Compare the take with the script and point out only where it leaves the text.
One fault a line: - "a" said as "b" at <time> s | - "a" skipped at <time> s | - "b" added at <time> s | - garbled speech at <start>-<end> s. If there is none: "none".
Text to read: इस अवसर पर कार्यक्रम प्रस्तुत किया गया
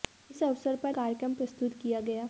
none